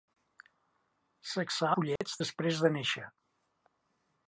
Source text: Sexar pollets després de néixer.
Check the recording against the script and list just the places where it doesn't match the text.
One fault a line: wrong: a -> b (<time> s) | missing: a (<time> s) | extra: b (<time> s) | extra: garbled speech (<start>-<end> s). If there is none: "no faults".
no faults